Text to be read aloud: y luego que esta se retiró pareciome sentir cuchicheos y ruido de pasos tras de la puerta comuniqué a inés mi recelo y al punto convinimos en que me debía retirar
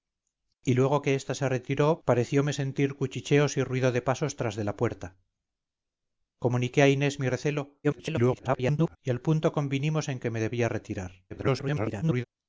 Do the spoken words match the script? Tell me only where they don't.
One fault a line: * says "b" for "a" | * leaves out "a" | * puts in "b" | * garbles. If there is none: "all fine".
* garbles
* garbles